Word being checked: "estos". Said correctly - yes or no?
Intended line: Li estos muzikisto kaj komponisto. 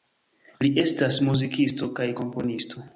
no